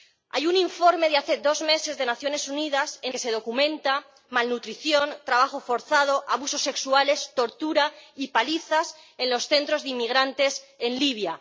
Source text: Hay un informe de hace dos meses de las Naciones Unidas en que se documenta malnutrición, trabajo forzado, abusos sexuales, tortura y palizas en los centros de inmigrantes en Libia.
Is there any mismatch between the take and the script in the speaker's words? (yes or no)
no